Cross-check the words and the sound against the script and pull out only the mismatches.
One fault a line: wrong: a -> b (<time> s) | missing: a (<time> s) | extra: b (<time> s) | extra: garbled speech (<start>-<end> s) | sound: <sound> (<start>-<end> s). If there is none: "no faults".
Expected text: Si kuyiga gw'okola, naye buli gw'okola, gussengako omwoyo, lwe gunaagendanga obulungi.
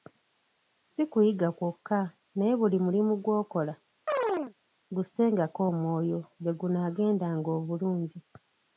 wrong: gw'okola -> kwokka (1.6 s)
extra: mulimu (2.9 s)
sound: chirp (4.1-4.5 s)